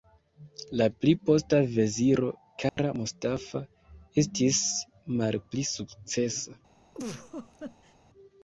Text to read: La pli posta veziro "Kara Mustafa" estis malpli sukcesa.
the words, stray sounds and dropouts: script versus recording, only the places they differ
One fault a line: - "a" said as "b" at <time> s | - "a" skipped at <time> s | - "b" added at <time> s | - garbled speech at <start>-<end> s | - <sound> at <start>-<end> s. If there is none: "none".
- dropout at 2.7-2.8 s
- laugh at 6.9-8.0 s